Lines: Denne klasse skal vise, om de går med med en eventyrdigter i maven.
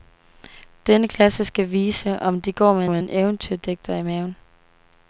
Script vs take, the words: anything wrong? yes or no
no